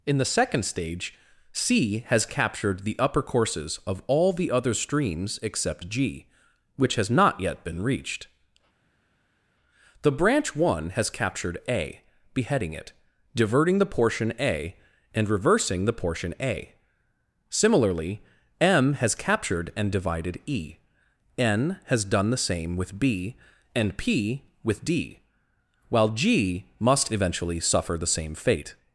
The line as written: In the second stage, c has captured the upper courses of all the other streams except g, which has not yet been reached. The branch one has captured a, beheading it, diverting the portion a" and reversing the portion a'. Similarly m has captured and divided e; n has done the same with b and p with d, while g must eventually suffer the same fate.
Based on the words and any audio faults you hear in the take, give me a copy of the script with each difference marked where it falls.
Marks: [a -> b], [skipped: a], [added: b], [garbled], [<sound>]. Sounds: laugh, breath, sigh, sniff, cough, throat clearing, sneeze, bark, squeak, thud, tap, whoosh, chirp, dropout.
In the second stage, c has captured the upper courses of all the other streams except g, which has not yet been reached. The branch one has captured a, beheading it, diverting the portion a" and reversing the portion a'. Similarly m has captured and divided e; n has done the same with b and p with d, while g must eventually suffer the same fate.